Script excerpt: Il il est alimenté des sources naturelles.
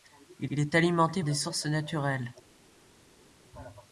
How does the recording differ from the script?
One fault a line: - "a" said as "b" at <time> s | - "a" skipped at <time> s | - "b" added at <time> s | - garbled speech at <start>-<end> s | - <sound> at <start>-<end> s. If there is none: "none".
none